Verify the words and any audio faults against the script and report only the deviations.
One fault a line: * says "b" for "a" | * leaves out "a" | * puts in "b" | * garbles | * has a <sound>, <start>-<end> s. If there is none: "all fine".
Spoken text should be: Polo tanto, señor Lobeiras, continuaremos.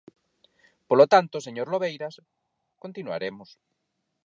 all fine